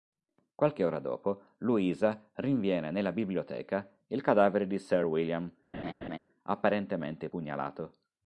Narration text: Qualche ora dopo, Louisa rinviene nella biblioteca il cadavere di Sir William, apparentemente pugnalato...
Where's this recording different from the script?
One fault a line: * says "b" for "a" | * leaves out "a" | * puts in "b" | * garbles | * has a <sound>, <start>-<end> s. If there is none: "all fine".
* has a laugh, 5.7-6.2 s